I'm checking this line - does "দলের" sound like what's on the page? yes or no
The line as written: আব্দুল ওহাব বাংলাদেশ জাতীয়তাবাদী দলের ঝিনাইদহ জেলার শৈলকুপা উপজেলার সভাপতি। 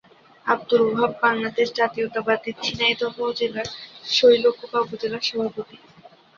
no